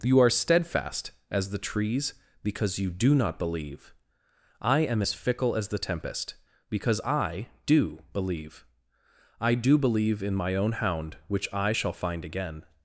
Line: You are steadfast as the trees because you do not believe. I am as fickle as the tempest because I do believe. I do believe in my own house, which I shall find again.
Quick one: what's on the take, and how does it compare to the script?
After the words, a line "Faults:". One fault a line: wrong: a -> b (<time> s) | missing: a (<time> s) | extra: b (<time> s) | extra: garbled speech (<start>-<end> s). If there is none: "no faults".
You are steadfast as the trees because you do not believe. I am as fickle as the tempest because I do believe. I do believe in my own hound, which I shall find again.
Faults:
wrong: house -> hound (10.7 s)